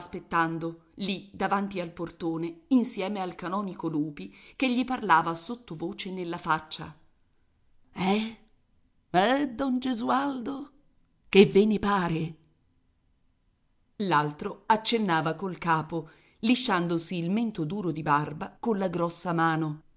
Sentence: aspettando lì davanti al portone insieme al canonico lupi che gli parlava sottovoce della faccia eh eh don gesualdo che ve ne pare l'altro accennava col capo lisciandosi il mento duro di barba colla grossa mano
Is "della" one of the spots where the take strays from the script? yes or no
yes